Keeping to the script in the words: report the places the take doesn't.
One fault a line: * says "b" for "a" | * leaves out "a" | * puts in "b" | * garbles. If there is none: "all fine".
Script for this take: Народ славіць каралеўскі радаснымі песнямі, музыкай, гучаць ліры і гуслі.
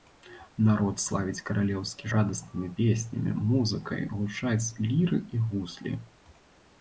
all fine